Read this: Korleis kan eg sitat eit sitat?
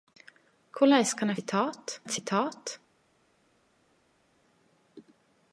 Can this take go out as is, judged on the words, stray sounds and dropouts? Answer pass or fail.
pass